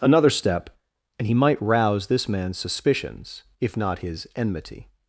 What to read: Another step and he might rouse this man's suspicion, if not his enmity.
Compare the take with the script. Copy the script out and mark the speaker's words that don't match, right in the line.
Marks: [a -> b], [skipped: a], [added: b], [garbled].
Another step and he might rouse this man's [suspicion, -> suspicions] if not his enmity.